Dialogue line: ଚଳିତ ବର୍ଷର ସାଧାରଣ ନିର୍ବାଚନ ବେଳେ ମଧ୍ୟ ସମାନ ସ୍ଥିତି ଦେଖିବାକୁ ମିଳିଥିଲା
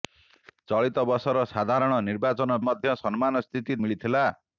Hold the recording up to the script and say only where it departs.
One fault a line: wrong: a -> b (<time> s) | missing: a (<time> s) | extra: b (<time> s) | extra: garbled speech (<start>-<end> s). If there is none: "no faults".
missing: ବେଳେ (2.6 s)
missing: ଦେଖିବାକୁ (3.8 s)